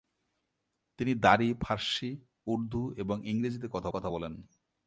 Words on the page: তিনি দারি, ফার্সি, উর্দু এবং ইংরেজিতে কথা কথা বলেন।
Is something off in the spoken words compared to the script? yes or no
no